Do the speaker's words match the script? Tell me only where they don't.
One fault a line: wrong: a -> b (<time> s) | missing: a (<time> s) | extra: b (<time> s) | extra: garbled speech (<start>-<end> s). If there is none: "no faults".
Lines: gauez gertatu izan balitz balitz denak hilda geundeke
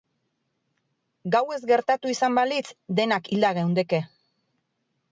missing: balitz (2.6 s)